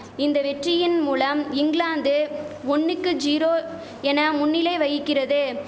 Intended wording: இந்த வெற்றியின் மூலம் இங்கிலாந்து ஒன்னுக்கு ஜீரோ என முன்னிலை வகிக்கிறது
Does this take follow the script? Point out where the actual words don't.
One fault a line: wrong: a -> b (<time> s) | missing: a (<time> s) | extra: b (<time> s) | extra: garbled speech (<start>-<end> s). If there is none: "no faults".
no faults